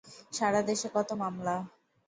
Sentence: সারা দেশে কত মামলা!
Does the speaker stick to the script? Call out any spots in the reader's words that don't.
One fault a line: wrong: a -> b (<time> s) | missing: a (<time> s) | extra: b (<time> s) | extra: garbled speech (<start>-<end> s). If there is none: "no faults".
no faults